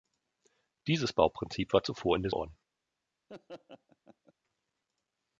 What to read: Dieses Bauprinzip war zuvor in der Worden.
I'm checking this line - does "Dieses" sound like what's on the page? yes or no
yes